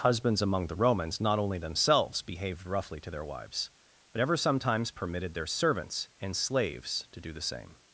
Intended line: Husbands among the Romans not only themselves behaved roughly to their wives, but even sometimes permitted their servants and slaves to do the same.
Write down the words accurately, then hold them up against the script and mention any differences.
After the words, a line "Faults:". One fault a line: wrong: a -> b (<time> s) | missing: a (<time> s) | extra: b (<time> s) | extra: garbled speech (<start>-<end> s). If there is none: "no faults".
Husbands among the Romans not only themselves behaved roughly to their wives, but ever sometimes permitted their servants and slaves to do the same.
Faults:
wrong: even -> ever (4.2 s)